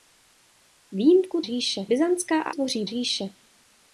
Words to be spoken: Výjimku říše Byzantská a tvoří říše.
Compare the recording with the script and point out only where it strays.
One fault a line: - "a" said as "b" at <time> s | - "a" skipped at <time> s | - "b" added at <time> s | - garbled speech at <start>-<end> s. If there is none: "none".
none